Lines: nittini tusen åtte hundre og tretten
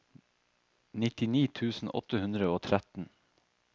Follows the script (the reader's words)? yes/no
yes